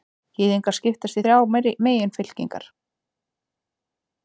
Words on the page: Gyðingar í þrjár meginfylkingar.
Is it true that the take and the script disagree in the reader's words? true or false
true